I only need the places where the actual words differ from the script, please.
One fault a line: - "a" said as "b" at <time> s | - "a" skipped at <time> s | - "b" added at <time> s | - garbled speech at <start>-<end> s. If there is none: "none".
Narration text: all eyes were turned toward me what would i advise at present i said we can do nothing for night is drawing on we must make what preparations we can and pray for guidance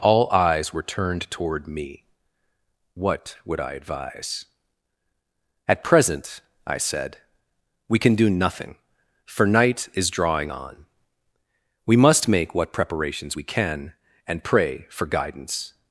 none